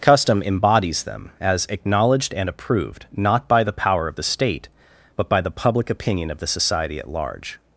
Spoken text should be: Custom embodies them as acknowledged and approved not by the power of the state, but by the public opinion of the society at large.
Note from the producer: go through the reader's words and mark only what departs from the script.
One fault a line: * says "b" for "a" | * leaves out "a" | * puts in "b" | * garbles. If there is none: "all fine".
all fine